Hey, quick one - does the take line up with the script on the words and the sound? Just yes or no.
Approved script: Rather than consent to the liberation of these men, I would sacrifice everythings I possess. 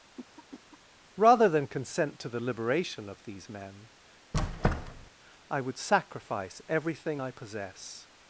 no